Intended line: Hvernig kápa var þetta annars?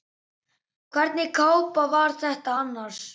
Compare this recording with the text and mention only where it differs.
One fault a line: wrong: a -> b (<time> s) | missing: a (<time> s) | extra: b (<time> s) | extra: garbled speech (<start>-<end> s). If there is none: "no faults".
no faults